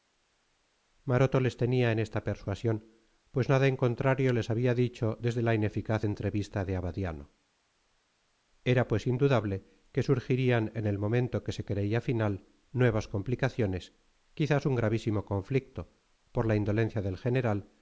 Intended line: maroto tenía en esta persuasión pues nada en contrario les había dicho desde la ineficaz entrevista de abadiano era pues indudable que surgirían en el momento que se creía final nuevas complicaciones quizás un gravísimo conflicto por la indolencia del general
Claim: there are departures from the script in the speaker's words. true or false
true